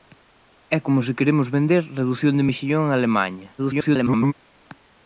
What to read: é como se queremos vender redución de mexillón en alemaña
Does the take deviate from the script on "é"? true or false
false